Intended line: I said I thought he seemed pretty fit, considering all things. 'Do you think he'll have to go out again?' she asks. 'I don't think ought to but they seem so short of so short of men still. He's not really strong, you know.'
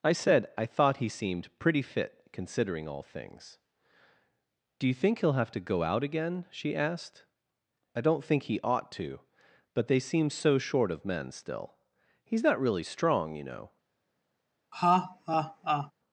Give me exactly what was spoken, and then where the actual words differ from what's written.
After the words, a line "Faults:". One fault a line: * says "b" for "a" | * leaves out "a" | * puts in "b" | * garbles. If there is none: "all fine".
I said I thought he seemed pretty fit, considering all things. 'Do you think he'll have to go out again?' she asked. 'I don't think he ought to but they seem so short of men still. He's not really strong, you know.'
Faults:
* says "asked" for "asks"
* puts in "he"
* leaves out "so short of"